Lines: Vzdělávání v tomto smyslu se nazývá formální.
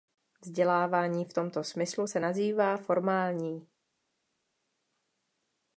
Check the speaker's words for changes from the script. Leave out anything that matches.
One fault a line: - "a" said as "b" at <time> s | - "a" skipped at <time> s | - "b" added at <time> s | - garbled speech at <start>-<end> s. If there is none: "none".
none